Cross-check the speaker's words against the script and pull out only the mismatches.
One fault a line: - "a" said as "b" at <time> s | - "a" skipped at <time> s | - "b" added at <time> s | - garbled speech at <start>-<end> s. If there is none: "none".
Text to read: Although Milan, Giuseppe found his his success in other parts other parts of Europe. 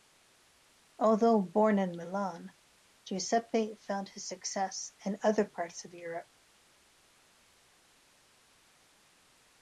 - "born in" added at 1.4 s
- "his" skipped at 4.3 s
- "other parts" skipped at 5.8 s